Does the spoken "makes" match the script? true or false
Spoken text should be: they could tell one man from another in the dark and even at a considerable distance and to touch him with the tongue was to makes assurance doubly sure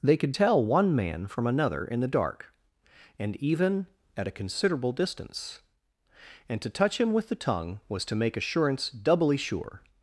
false